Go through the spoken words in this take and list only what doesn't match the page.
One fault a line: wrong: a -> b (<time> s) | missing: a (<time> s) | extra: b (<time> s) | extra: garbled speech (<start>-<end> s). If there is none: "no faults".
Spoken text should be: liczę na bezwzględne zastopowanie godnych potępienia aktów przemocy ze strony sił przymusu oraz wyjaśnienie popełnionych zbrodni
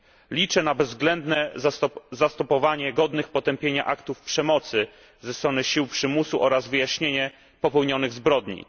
no faults